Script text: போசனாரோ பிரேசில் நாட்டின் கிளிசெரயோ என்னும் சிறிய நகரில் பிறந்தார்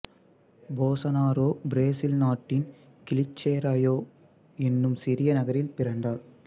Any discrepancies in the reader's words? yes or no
no